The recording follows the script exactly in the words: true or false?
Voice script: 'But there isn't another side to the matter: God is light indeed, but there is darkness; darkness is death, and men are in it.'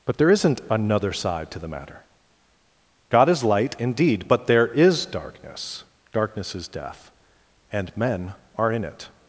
true